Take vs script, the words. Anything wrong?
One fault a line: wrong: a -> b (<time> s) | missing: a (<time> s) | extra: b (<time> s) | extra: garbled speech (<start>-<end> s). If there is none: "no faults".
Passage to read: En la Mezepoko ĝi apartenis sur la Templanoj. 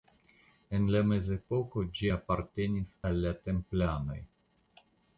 wrong: sur -> al (3.1 s)